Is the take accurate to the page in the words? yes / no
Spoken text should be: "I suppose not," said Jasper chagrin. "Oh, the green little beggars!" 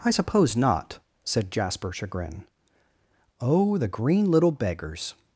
yes